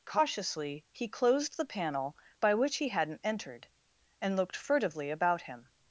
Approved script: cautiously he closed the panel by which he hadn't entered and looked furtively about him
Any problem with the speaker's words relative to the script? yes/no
no